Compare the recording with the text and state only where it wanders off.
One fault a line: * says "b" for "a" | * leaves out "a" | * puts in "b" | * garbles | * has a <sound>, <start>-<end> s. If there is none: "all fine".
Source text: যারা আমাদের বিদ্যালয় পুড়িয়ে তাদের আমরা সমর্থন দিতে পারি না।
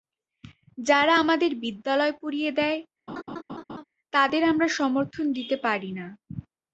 * puts in "দেয়"
* has a laugh, 3.1-3.8 s